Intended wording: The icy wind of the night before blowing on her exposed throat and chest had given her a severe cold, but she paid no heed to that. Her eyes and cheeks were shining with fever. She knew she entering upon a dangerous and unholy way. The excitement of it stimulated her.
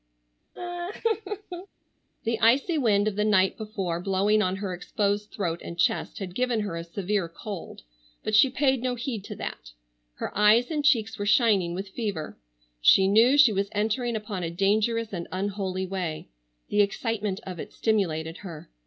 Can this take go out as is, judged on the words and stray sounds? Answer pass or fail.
fail